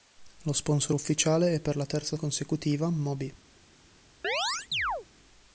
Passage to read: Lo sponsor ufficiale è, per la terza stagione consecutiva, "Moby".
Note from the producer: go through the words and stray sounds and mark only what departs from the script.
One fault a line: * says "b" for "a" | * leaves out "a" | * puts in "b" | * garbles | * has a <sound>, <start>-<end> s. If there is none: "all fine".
* leaves out "stagione"
* has a chirp, 4.2-5.1 s